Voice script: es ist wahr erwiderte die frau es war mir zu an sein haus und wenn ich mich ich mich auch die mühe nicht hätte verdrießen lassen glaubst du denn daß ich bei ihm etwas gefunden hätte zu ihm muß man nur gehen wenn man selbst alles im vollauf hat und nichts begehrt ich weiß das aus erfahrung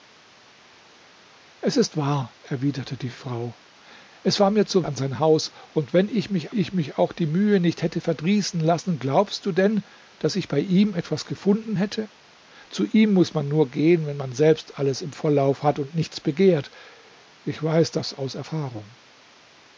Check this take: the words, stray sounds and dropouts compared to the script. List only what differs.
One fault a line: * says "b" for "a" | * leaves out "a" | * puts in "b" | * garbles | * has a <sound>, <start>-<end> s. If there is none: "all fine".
all fine